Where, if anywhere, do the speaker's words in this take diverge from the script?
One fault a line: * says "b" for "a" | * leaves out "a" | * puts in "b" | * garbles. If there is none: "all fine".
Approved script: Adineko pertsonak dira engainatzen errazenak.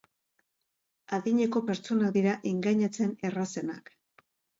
all fine